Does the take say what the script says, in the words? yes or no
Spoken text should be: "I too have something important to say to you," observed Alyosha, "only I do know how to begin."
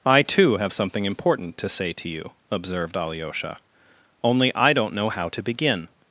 no